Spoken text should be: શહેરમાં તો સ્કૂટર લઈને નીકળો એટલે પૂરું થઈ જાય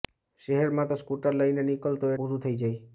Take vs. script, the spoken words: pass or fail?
fail